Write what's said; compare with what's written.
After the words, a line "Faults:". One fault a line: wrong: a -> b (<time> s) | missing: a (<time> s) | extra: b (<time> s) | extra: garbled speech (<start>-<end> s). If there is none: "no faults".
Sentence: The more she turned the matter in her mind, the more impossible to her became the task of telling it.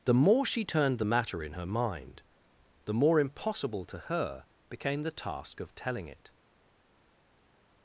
The more she turned the matter in her mind, the more impossible to her became the task of telling it.
Faults:
no faults